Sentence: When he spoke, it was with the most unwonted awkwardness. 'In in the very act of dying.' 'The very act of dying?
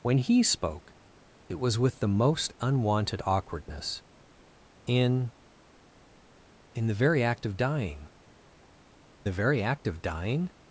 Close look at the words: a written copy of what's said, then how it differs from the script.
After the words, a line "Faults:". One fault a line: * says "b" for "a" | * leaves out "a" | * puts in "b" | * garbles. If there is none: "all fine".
When he spoke, it was with the most unwonted awkwardness. 'In in the very act of dying.' 'The very act of dying?
Faults:
all fine